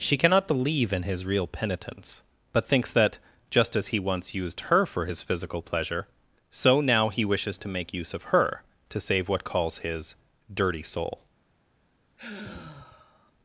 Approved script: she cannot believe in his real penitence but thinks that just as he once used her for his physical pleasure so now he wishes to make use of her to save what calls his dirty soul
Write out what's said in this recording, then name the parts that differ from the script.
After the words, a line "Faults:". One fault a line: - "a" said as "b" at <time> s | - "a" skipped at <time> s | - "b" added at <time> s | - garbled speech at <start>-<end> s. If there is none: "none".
she cannot believe in his real penitence but thinks that just as he once used her for his physical pleasure so now he wishes to make use of her to save what calls his dirty soul
Faults:
none